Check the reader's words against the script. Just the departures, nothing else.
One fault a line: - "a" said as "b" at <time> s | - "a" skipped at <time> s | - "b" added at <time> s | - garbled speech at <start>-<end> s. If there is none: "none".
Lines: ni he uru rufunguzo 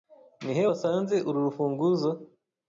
- "wasanze" added at 0.7 s